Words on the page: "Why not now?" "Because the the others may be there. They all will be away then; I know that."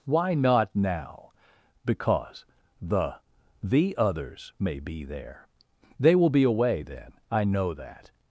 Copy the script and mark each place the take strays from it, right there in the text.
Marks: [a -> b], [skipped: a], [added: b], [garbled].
"Why not now?" "Because the the others may be there. They [skipped: all] will be away then; I know that."